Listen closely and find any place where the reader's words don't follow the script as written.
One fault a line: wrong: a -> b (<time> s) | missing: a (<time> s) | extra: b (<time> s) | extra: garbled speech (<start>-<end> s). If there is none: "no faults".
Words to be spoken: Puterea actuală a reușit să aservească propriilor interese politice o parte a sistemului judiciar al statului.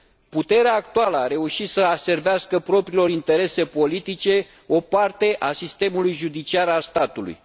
no faults